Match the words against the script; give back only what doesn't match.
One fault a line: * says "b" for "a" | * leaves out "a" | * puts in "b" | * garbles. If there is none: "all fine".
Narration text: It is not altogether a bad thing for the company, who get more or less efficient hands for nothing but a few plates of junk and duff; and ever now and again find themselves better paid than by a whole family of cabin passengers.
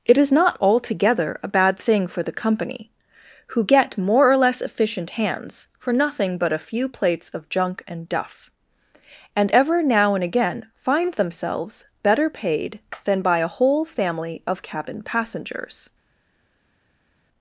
all fine